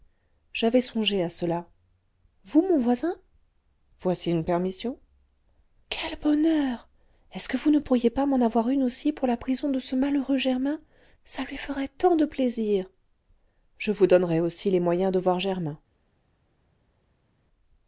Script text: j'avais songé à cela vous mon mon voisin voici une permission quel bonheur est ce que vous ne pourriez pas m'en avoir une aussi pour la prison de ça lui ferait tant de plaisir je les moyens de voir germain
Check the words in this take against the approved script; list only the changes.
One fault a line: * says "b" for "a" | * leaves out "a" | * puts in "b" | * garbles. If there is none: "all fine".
* leaves out "mon"
* puts in "ce malheureux germain"
* puts in "vous donnerai aussi"